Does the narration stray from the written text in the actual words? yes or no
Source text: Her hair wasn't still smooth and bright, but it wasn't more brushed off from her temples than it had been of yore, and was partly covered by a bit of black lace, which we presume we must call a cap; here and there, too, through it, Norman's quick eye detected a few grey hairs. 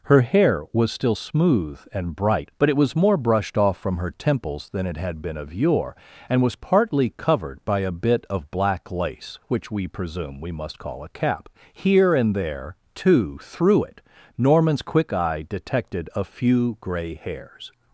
yes